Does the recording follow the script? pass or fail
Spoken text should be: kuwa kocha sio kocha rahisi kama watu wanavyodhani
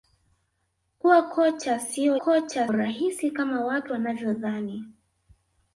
pass